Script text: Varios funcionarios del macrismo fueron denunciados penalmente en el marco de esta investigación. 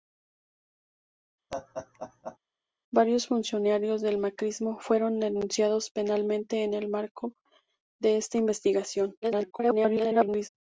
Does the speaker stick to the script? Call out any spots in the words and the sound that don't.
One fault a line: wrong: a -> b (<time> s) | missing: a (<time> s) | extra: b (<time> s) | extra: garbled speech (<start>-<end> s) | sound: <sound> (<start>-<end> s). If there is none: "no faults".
sound: laugh (1.5-2.4 s)
extra: garbled speech (9.2-10.5 s)